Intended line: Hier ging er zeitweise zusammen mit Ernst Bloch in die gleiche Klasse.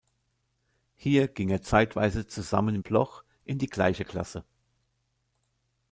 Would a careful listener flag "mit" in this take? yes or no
yes